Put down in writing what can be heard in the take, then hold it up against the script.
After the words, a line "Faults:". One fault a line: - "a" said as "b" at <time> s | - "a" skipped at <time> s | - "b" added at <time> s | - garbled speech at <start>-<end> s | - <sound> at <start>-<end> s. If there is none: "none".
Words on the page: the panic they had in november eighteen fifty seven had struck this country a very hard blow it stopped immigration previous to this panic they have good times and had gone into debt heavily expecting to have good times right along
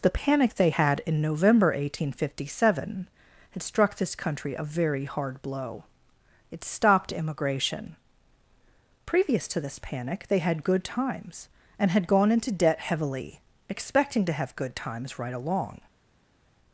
the panic they had in november eighteen fifty seven had struck this country a very hard blow it stopped immigration previous to this panic they had good times and had gone into debt heavily expecting to have good times right along
Faults:
- "have" said as "had" at 10.4 s